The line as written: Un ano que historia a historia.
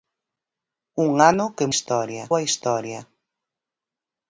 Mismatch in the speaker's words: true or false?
false